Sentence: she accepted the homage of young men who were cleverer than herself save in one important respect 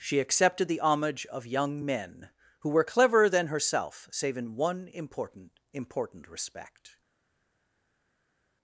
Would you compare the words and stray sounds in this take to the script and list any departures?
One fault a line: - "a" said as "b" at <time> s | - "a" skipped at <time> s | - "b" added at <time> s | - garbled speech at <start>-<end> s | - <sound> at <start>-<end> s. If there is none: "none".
- "important" added at 5.7 s